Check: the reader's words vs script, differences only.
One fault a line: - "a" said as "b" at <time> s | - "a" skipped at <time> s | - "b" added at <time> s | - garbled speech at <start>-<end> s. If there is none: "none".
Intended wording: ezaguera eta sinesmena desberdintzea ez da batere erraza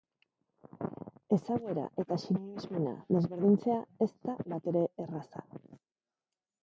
none